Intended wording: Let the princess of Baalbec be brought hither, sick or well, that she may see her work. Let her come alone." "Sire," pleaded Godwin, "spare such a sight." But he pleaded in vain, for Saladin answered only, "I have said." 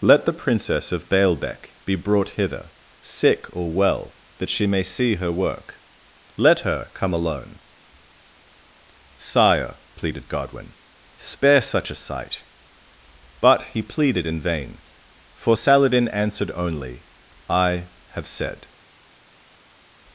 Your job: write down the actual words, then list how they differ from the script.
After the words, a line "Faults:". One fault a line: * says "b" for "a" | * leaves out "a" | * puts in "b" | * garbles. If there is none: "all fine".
Let the princess of Baalbec be brought hither, sick or well, that she may see her work. Let her come alone." "Sire," pleaded Godwin, "spare such a sight." But he pleaded in vain, for Saladin answered only, "I have said."
Faults:
all fine